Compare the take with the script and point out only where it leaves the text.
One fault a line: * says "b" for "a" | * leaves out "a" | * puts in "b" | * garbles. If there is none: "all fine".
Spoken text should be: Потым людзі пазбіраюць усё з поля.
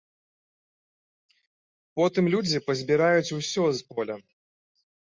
all fine